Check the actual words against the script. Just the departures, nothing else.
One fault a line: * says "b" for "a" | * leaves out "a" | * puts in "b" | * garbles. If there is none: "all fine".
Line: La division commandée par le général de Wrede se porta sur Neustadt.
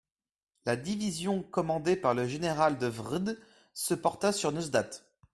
all fine